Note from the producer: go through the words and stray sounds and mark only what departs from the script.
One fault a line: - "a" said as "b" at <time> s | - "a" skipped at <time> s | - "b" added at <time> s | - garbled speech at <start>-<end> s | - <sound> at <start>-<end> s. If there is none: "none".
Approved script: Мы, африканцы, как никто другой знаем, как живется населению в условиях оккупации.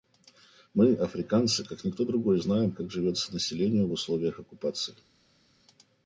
none